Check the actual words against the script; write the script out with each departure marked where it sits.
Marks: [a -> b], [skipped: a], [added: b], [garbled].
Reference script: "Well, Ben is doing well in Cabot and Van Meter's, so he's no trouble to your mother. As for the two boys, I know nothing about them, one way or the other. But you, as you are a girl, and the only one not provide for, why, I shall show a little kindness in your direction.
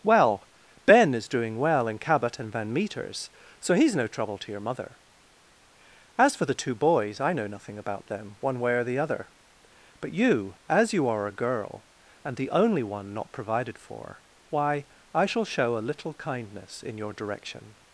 "Well, Ben is doing well in Cabot and Van Meter's, so he's no trouble to your mother. As for the two boys, I know nothing about them, one way or the other. But you, as you are a girl, and the only one not [provide -> provided] for, why, I shall show a little kindness in your direction.